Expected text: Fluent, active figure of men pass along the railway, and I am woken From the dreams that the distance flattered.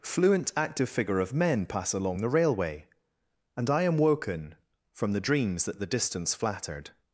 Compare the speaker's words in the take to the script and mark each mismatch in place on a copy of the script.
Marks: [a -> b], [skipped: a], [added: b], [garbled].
Fluent, active figure of men pass along the railway, and I am woken From the dreams that the distance flattered.